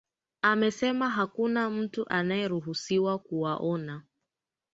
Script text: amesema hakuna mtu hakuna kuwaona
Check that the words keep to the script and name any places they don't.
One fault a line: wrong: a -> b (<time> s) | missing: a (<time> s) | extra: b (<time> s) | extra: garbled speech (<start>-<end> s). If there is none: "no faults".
wrong: hakuna -> anayeruhusiwa (2.1 s)